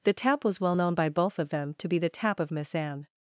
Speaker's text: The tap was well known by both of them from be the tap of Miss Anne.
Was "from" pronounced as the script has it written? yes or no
no